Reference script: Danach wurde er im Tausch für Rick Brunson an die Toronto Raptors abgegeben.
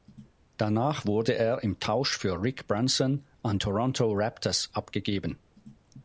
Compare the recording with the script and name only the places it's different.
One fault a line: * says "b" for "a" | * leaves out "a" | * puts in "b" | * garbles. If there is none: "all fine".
* leaves out "die"